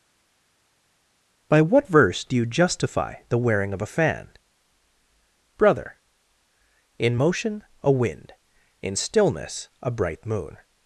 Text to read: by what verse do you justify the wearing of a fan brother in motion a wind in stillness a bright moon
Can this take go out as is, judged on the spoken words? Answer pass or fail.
pass